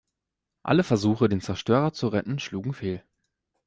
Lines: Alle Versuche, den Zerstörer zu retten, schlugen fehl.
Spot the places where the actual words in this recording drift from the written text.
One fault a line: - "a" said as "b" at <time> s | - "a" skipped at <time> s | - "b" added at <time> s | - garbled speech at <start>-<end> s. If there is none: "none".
none